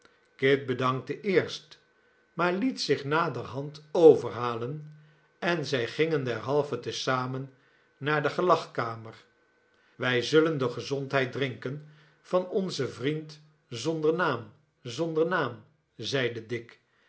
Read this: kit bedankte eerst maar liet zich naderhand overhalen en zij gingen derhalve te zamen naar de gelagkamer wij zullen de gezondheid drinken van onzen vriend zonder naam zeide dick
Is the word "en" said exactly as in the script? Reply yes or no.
yes